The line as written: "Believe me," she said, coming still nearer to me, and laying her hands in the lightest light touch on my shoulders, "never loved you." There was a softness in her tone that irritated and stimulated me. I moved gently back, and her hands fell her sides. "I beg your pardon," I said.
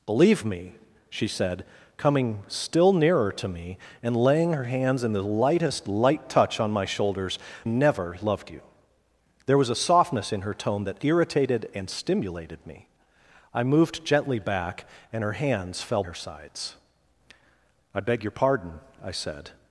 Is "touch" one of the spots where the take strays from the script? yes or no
no